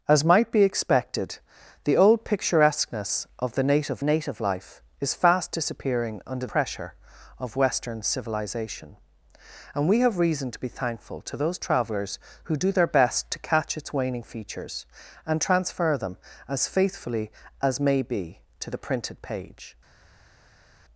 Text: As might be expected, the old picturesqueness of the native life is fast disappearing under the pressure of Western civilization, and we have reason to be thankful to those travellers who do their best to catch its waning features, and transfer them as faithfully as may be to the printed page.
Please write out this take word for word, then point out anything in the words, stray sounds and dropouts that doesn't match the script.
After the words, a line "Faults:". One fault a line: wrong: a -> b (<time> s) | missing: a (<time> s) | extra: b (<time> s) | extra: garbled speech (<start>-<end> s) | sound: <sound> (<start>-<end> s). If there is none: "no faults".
As might be expected, the old picturesqueness of the native native life is fast disappearing under pressure of Western civilization, and we have reason to be thankful to those travellers who do their best to catch its waning features, and transfer them as faithfully as may be to the printed page.
Faults:
extra: native (4.0 s)
missing: the (6.5 s)